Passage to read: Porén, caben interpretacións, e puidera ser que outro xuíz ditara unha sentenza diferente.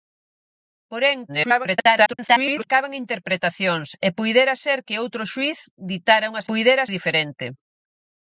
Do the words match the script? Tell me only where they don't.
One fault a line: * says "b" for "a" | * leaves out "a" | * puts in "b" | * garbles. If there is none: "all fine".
* garbles
* says "puidera" for "sentenza"